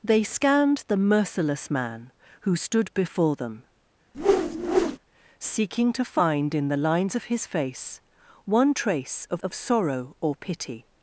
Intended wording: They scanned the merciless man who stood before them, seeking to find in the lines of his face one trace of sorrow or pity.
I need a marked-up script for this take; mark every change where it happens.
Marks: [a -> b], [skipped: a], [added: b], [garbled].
They scanned the merciless man who stood before them, seeking to find in the lines of his face one trace of [added: of] sorrow or pity.